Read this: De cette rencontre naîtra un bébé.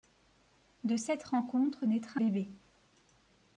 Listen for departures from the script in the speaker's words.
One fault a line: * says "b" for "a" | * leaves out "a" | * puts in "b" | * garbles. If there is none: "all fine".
* leaves out "un"